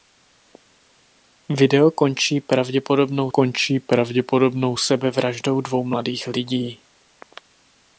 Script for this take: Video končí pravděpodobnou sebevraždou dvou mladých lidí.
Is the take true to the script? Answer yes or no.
no